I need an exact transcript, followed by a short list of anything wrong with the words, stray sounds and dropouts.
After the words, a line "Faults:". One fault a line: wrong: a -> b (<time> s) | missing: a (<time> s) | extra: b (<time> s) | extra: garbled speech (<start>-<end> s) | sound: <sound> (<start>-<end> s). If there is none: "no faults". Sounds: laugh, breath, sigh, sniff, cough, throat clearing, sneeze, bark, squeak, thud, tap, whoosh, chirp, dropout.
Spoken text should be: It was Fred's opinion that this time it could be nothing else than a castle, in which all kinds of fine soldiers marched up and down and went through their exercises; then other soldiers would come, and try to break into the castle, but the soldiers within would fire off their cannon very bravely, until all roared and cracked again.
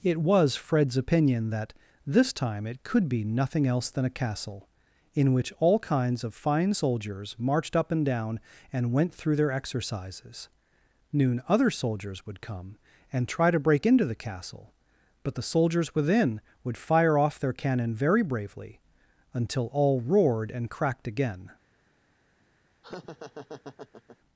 It was Fred's opinion that this time it could be nothing else than a castle, in which all kinds of fine soldiers marched up and down and went through their exercises; noon other soldiers would come, and try to break into the castle, but the soldiers within would fire off their cannon very bravely, until all roared and cracked again.
Faults:
wrong: then -> noon (11.1 s)
sound: laugh (22.8-24.2 s)